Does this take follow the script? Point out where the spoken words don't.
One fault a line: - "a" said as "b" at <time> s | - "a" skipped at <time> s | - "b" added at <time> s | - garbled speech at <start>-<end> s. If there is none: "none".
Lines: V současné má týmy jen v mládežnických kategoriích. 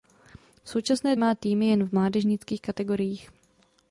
none